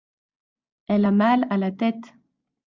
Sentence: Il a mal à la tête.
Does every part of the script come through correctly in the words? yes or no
no